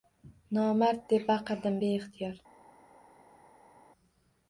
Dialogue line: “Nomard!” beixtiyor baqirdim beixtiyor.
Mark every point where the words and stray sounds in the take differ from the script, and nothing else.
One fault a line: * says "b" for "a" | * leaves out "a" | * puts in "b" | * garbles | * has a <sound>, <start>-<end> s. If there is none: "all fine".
* says "deb" for "beixtiyor"